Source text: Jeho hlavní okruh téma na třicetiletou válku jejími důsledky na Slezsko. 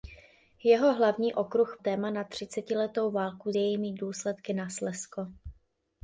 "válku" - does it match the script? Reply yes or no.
yes